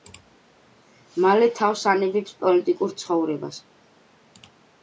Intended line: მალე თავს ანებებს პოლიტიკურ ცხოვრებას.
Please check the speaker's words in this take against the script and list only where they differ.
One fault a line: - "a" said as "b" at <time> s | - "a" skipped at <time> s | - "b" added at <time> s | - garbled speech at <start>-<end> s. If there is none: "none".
none